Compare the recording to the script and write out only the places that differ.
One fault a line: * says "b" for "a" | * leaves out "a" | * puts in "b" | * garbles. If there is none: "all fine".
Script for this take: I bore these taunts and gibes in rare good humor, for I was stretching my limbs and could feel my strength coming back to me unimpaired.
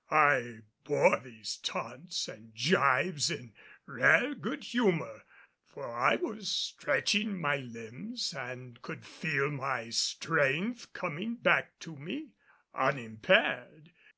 all fine